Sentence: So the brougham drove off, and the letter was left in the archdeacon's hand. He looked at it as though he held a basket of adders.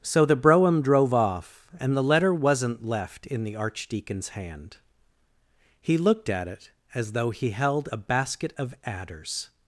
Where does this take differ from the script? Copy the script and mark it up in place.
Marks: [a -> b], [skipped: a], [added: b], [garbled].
So the brougham drove off, and the letter [was -> wasn't] left in the archdeacon's hand. He looked at it as though he held a basket of adders.